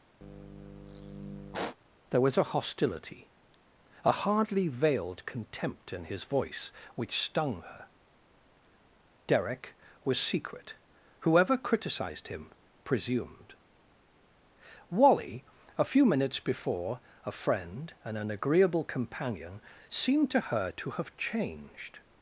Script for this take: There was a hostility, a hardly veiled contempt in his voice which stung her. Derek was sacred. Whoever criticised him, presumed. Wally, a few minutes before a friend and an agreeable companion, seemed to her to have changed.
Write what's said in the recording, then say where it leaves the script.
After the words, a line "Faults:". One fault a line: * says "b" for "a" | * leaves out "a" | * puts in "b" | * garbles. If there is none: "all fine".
There was a hostility, a hardly veiled contempt in his voice which stung her. Derek was secret. Whoever criticised him, presumed. Wally, a few minutes before a friend and an agreeable companion, seemed to her to have changed.
Faults:
* says "secret" for "sacred"